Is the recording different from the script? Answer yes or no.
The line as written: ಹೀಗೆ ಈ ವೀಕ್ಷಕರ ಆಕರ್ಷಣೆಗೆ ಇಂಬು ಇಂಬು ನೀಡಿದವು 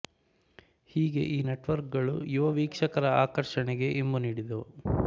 yes